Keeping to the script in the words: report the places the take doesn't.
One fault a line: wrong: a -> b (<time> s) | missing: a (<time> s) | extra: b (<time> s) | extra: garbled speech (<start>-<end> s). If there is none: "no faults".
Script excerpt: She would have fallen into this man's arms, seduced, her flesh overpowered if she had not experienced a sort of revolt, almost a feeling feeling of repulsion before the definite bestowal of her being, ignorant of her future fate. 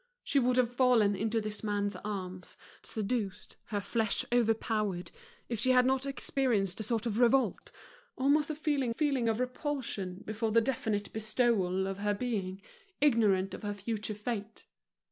no faults